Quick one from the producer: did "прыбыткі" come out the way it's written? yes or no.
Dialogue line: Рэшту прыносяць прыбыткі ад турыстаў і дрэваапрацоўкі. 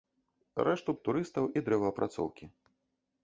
no